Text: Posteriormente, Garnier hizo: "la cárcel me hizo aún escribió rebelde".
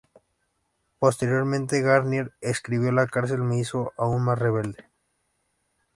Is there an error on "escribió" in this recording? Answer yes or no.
yes